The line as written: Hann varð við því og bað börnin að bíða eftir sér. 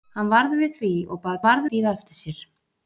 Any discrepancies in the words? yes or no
yes